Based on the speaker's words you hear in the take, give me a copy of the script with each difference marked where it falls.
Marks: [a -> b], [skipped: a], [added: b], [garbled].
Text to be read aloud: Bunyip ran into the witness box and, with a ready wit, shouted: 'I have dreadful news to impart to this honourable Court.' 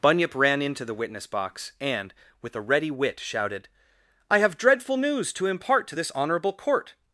Bunyip ran into the witness box and, with a ready wit, shouted: 'I have dreadful news to impart to this honourable Court.'